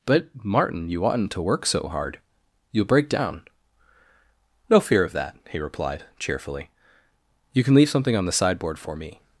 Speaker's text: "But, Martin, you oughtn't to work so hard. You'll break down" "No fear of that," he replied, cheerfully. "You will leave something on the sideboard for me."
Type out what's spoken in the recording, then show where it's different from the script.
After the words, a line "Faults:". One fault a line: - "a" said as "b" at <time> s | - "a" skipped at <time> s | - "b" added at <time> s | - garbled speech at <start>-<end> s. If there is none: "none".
"But, Martin, you oughtn't to work so hard. You'll break down" "No fear of that," he replied, cheerfully. "You can leave something on the sideboard for me."
Faults:
- "will" said as "can" at 7.6 s